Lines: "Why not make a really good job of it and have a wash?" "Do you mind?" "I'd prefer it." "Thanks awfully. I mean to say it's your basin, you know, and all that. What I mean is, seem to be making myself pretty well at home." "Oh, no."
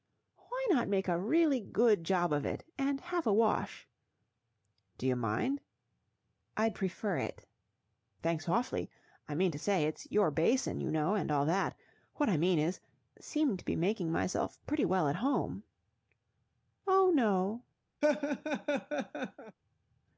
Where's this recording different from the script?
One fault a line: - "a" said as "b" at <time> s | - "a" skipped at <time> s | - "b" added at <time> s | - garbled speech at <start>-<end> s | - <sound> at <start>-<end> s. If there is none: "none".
- laugh at 18.0-19.6 s